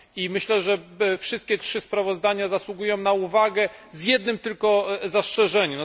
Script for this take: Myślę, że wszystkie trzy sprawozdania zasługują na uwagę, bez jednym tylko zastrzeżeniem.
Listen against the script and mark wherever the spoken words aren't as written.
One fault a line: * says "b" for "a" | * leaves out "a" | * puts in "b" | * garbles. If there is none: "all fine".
* says "z" for "bez"